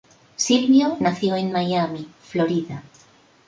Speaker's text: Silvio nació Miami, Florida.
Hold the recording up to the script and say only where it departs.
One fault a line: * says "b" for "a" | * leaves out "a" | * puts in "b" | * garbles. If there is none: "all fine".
* puts in "en"